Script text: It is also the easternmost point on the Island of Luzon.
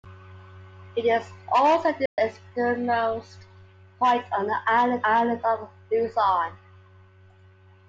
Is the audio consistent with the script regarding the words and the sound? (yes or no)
no